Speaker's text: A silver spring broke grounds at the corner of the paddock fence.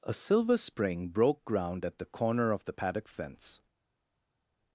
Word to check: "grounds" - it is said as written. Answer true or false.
false